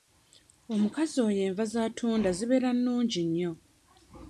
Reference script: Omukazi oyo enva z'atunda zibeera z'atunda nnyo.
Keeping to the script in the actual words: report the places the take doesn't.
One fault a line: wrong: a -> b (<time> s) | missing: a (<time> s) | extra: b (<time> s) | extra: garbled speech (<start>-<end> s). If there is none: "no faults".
wrong: z'atunda -> nnungi (2.8 s)